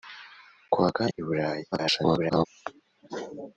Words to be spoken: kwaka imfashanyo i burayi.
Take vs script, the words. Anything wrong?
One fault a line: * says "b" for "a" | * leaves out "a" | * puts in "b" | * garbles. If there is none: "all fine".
* leaves out "imfashanyo"
* garbles